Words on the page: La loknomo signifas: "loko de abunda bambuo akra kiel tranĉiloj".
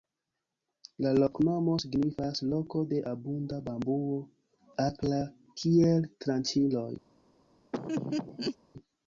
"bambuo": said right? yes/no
yes